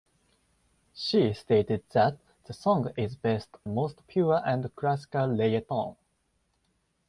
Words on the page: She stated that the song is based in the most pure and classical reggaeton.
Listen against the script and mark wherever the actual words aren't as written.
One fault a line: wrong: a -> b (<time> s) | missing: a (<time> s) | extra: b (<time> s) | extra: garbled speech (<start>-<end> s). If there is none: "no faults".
missing: in the (3.6 s)